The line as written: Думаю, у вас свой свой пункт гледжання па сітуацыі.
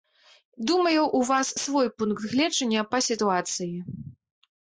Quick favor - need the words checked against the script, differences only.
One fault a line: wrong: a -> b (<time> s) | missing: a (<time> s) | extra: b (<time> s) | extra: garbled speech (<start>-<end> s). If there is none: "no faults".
missing: свой (1.9 s)